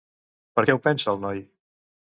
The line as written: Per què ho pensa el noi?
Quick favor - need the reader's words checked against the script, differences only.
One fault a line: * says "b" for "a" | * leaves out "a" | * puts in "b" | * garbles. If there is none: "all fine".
all fine